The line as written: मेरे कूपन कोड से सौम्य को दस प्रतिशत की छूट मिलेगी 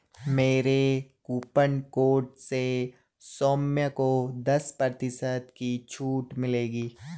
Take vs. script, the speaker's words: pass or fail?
pass